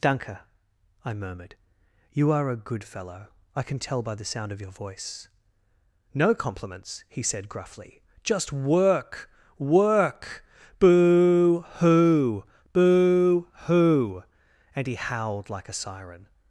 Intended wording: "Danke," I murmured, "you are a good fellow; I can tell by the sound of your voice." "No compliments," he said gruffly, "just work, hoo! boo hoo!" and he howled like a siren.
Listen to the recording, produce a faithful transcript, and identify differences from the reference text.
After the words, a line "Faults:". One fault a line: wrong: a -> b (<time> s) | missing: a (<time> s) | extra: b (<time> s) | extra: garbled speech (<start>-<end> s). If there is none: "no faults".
"Danke," I murmured, "you are a good fellow; I can tell by the sound of your voice." "No compliments," he said gruffly, "just work, work Boo, hoo! boo hoo!" and he howled like a siren.
Faults:
extra: work Boo (9.6 s)